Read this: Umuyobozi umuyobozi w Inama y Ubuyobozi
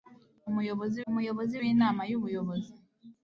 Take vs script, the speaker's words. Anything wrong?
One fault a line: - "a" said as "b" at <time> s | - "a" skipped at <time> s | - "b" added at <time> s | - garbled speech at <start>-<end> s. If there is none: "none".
none